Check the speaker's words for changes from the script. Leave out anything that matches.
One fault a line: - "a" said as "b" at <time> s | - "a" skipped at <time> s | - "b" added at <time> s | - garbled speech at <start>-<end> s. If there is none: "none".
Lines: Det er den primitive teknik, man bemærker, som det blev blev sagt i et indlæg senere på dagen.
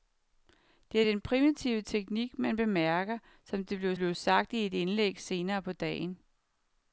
none